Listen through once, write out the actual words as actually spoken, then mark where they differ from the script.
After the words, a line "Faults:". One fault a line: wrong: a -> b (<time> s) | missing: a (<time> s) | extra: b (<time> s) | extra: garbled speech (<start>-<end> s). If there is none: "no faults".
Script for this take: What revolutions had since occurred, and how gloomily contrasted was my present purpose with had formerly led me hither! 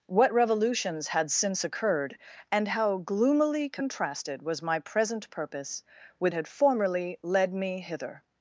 What revolutions had since occurred, and how gloomily contrasted was my present purpose with had formerly led me hither!
Faults:
no faults